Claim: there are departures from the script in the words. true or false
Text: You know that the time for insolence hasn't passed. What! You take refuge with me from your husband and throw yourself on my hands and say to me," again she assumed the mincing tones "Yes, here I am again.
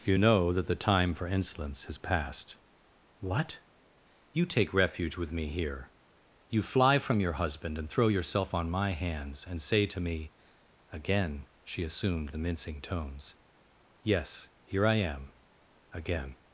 true